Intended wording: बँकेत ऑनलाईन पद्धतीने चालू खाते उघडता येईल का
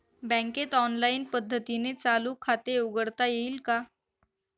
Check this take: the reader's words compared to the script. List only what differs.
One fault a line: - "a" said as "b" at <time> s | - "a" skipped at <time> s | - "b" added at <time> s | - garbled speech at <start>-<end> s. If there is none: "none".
none